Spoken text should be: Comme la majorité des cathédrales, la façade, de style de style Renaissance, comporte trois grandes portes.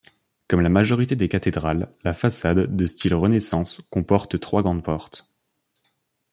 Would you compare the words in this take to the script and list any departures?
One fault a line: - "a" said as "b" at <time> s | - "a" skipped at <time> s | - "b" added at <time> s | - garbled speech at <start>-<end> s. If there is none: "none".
- "de style" skipped at 3.1 s